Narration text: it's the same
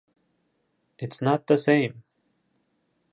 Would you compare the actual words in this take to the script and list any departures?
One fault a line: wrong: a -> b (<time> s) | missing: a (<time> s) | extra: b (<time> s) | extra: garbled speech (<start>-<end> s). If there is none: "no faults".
extra: not (1.2 s)